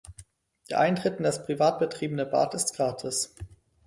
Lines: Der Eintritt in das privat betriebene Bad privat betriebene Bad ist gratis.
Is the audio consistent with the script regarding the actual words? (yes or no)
no